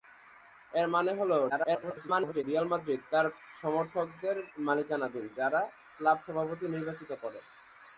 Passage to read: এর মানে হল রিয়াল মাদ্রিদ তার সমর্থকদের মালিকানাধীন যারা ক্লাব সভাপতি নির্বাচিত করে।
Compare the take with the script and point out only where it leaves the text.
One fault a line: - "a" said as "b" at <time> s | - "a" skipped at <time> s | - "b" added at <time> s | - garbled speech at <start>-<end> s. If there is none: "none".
- garbled speech at 1.5-2.4 s